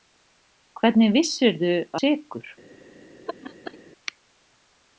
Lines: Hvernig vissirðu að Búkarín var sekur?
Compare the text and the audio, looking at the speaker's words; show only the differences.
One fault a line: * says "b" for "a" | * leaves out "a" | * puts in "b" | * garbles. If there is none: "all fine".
* leaves out "að Búkarín var"